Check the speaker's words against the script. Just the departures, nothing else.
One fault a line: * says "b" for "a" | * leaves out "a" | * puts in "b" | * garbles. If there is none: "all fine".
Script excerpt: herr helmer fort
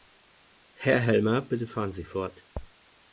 * puts in "bitte fahren sie"